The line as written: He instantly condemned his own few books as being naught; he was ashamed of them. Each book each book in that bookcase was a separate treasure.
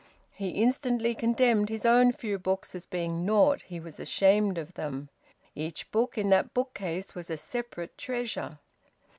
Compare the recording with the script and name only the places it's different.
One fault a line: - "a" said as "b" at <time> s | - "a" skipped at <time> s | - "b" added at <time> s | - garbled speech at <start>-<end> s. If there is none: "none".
- "each book" skipped at 6.2 s